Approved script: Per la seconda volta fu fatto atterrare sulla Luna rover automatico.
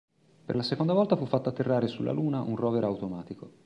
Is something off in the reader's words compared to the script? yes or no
yes